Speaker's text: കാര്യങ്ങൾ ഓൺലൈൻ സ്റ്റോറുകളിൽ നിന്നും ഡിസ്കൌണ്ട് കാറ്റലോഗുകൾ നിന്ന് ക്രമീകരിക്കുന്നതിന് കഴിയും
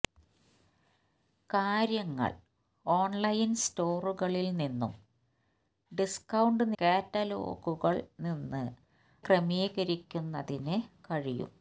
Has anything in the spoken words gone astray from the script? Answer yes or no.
no